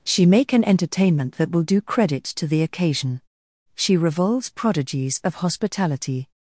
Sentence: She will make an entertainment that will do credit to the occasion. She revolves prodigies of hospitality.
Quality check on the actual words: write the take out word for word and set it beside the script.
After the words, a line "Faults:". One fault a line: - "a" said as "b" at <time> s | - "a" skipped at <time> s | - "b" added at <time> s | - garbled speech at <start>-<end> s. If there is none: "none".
She make an entertainment that will do credit to the occasion. She revolves prodigies of hospitality.
Faults:
- "will" skipped at 0.2 s